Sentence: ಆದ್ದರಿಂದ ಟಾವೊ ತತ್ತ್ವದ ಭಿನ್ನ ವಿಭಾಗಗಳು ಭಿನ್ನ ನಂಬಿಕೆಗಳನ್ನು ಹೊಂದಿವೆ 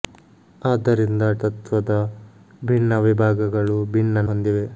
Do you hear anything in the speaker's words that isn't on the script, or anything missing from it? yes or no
yes